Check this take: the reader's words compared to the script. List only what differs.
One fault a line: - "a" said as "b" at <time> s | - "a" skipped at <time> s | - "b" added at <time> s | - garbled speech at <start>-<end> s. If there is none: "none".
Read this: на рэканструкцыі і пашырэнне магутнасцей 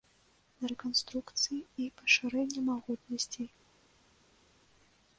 none